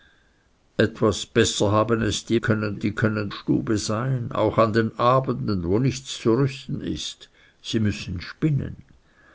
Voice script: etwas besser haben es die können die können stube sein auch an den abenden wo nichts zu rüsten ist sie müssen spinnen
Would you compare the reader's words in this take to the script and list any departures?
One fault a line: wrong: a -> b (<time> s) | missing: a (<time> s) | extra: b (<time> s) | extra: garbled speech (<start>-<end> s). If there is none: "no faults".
no faults